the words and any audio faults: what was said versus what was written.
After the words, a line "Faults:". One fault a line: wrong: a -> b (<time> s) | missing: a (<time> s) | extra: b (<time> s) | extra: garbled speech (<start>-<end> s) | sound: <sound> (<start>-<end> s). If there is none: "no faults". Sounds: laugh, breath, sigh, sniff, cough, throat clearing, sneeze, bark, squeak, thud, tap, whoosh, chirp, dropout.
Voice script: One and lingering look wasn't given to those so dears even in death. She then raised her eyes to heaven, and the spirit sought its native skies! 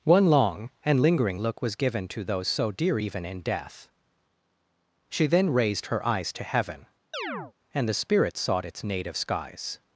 One long and lingering look was given to those so dear even in death. She then raised her eyes to heaven, and the spirit sought its native skies!
Faults:
extra: long (0.3 s)
wrong: wasn't -> was (1.6 s)
wrong: dears -> dear (2.7 s)
sound: chirp (7.1-7.5 s)